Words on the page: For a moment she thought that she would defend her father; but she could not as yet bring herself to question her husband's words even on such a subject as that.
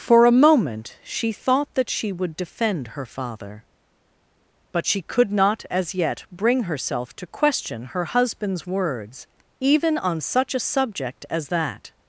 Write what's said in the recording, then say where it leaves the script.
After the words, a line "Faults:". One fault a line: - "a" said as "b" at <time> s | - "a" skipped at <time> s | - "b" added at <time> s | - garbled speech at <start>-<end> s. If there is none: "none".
For a moment she thought that she would defend her father; but she could not as yet bring herself to question her husband's words even on such a subject as that.
Faults:
none